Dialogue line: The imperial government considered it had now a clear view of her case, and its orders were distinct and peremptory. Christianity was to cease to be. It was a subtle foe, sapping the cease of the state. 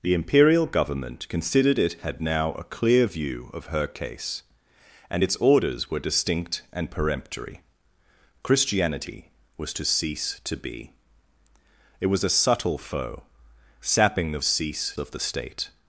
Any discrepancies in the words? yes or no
no